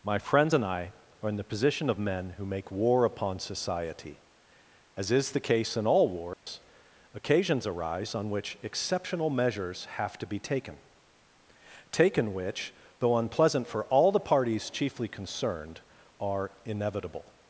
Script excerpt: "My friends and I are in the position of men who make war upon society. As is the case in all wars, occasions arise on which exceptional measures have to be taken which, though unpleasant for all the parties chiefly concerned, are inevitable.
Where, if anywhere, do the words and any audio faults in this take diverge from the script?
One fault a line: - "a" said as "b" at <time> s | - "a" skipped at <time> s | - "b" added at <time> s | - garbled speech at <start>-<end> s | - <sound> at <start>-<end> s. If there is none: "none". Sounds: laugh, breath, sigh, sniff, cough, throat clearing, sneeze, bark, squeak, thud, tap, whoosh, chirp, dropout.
- dropout at 6.3-6.5 s
- "taken" added at 11.9 s